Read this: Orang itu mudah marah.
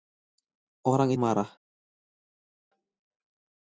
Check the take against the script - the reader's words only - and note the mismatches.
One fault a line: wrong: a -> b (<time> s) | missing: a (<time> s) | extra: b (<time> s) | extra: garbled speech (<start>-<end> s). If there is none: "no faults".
missing: itu mudah (1.1 s)